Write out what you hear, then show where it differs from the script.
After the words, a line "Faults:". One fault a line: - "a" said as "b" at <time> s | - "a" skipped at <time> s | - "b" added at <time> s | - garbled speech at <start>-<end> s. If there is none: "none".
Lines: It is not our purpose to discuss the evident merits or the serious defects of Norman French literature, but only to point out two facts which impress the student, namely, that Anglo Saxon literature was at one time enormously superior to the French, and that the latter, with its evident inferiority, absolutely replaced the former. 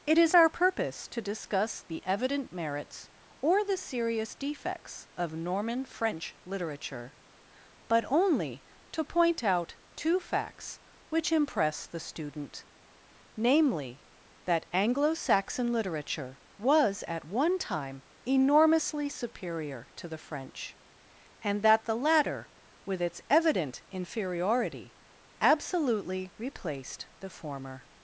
It is our purpose to discuss the evident merits or the serious defects of Norman French literature, but only to point out two facts which impress the student, namely, that Anglo Saxon literature was at one time enormously superior to the French, and that the latter, with its evident inferiority, absolutely replaced the former.
Faults:
- "not" skipped at 0.3 s